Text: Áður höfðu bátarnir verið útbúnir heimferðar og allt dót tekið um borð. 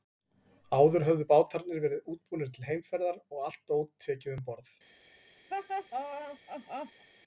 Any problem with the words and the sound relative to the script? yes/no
yes